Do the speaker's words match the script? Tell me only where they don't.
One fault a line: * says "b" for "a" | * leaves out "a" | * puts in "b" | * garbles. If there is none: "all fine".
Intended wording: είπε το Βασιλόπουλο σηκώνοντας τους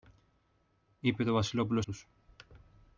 * leaves out "σηκώνοντας"